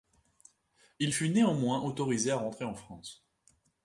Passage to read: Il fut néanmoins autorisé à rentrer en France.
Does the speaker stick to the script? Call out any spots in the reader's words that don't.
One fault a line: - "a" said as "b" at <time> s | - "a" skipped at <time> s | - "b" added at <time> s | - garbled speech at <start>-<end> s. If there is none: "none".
none